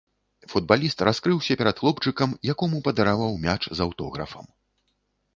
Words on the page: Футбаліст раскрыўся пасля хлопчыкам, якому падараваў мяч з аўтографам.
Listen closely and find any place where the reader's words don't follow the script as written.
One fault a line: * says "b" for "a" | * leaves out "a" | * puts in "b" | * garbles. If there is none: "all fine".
* says "перад" for "пасля"